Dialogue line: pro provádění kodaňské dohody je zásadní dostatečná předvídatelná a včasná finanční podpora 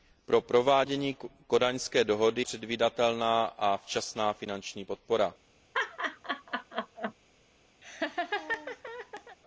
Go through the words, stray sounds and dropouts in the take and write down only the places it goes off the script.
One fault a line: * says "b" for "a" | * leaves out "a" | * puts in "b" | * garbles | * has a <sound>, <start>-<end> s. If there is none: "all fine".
* leaves out "je zásadní dostatečná"
* has a laugh, 5.7-7.1 s
* has a laugh, 7.8-9.4 s